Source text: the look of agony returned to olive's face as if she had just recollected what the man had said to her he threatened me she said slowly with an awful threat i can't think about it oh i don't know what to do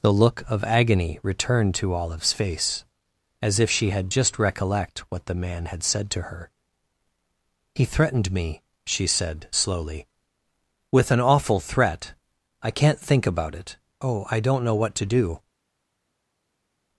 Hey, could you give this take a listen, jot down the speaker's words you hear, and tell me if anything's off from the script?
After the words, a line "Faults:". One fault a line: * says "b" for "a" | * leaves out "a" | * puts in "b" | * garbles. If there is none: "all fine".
the look of agony returned to olive's face as if she had just recollect what the man had said to her he threatened me she said slowly with an awful threat i can't think about it oh i don't know what to do
Faults:
* says "recollect" for "recollected"